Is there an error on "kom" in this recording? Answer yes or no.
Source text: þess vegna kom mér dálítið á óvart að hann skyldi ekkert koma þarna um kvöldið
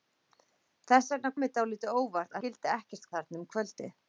yes